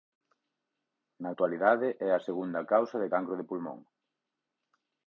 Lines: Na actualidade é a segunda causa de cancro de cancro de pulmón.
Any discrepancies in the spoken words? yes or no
yes